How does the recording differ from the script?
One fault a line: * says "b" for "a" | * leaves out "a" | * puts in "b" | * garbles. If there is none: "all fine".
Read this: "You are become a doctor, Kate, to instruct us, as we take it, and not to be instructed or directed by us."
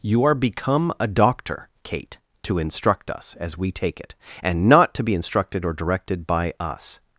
all fine